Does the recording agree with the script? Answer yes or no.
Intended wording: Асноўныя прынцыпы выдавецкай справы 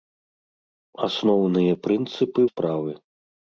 no